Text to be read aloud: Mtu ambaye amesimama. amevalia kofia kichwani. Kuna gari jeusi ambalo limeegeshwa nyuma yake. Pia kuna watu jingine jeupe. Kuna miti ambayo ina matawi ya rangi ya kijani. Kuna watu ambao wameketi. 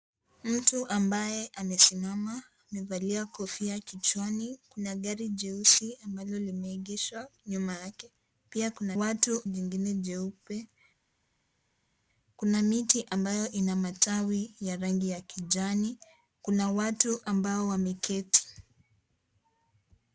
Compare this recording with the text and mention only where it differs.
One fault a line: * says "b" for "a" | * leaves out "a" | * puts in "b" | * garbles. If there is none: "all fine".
all fine